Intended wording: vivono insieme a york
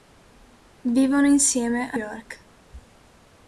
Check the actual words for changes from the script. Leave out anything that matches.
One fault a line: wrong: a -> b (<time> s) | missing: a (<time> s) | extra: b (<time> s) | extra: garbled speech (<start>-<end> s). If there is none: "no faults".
no faults